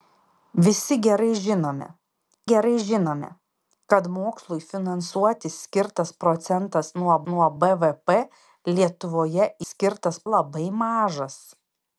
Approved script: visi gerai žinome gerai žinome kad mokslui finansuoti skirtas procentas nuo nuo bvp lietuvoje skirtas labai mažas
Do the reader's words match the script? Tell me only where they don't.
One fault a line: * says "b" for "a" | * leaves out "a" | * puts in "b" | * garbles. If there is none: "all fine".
all fine